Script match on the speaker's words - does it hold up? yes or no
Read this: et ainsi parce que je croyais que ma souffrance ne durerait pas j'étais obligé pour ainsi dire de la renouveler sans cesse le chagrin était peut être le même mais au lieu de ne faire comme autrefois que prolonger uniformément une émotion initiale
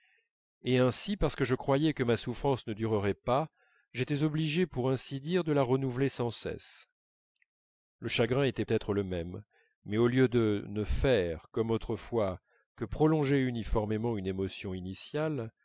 no